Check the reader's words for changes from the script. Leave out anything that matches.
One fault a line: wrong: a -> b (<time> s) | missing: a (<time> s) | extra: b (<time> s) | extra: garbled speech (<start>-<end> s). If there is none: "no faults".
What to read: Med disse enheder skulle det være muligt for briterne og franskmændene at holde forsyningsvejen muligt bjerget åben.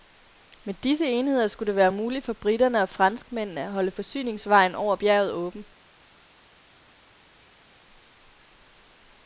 wrong: muligt -> over (4.8 s)